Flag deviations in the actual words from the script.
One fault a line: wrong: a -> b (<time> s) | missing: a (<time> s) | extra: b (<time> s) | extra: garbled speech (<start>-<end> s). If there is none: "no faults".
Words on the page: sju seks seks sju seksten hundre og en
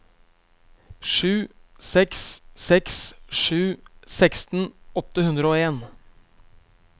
extra: åtte (5.0 s)